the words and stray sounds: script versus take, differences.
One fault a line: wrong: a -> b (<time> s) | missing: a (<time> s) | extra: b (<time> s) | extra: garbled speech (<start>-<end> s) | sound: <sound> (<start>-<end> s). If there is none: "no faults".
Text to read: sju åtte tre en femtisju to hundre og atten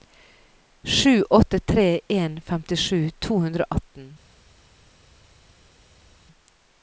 no faults